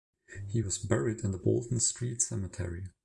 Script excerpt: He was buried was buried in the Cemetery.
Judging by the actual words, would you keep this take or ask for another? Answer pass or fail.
fail